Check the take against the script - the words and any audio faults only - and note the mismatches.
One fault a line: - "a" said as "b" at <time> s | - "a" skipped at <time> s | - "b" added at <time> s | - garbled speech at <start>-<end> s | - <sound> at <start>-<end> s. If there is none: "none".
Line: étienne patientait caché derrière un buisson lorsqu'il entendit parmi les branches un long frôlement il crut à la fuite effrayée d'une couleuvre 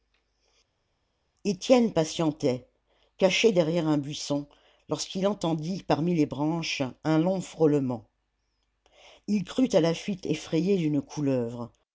none